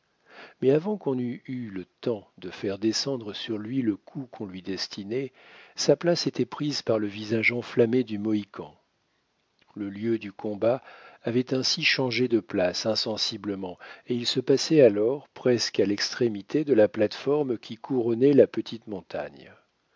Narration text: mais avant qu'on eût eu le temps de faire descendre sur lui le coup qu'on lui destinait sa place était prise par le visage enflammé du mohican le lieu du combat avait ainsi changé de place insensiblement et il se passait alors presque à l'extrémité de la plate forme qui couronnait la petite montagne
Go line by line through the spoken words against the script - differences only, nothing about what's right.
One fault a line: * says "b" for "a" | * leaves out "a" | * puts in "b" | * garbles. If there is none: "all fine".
all fine